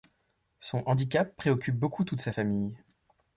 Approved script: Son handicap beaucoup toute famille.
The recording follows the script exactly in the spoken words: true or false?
false